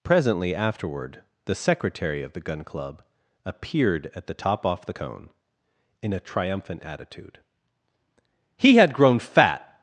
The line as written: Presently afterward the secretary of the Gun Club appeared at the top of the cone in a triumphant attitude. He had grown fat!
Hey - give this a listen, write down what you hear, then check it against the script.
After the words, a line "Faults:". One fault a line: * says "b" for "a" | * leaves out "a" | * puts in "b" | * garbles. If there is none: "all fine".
Presently afterward the secretary of the Gun Club appeared at the top off the cone in a triumphant attitude. He had grown fat!
Faults:
* says "off" for "of"